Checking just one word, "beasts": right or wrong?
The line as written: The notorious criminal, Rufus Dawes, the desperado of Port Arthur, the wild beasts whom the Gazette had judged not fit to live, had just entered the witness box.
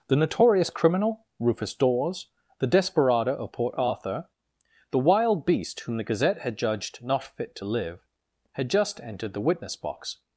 wrong